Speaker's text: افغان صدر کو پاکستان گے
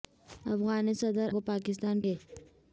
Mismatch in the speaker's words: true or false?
false